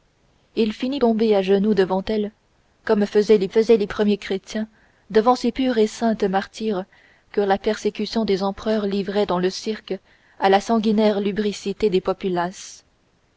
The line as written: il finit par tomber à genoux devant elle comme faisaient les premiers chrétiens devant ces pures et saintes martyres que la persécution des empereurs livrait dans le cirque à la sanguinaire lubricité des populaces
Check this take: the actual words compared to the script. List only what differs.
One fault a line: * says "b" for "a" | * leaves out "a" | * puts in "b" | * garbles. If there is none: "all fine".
* leaves out "par"
* puts in "faisaient les"